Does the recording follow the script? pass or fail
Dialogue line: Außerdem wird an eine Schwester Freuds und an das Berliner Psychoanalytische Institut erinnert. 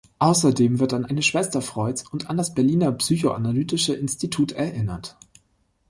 pass